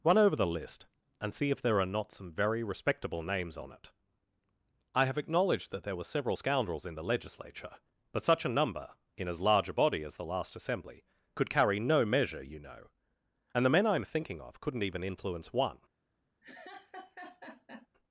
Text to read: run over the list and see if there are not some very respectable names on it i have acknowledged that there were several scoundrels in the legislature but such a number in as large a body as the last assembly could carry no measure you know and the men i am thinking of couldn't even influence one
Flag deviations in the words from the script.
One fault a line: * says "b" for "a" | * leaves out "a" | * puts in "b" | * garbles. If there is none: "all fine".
all fine